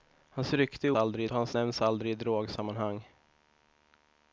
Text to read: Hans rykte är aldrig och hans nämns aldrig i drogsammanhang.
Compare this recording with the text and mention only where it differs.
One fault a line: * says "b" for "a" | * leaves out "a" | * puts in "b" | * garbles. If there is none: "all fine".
all fine